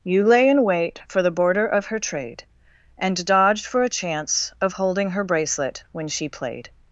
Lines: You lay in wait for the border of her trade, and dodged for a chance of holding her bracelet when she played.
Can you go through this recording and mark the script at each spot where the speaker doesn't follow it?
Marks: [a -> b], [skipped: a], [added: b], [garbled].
You lay in wait for the border of her trade, and dodged for a chance of holding her bracelet when she played.